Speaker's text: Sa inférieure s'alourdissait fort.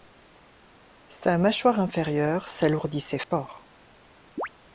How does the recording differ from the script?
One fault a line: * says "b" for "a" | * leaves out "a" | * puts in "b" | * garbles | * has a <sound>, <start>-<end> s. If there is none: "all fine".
* puts in "mâchoire"
* has a dropout, 3.2-3.3 s
* has a chirp, 4.4-4.5 s